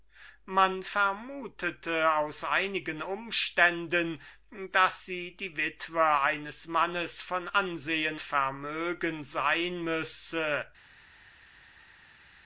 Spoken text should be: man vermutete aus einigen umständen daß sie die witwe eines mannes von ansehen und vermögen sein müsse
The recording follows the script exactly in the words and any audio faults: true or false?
false